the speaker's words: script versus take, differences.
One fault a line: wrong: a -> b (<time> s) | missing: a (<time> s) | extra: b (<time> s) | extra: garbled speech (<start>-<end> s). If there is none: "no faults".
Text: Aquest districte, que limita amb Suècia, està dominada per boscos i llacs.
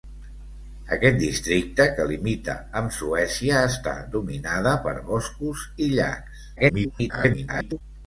extra: garbled speech (6.6-7.8 s)